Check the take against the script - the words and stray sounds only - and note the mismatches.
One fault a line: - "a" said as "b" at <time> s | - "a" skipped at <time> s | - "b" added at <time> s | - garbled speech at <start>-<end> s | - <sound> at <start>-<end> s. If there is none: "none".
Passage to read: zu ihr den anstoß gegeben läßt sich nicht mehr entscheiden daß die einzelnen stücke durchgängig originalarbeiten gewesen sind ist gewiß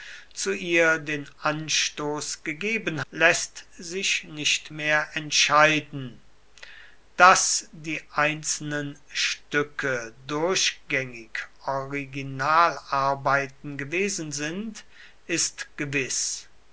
none